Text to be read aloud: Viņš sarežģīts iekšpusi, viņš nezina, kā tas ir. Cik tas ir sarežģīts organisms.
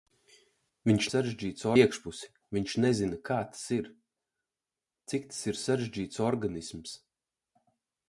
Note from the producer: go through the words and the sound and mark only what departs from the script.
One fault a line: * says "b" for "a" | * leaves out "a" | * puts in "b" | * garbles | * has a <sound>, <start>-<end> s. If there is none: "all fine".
all fine